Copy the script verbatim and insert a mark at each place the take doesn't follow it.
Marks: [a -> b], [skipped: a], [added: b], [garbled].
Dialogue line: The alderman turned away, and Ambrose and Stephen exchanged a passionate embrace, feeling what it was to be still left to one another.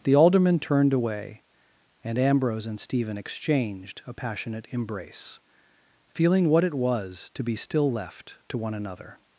The alderman turned away, and Ambrose and Stephen exchanged a passionate embrace, feeling what it was to be still left to one another.